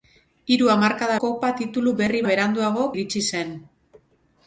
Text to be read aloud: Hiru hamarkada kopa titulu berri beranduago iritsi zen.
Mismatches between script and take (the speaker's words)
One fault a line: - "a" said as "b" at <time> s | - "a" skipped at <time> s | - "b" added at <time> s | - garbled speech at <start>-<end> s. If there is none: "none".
none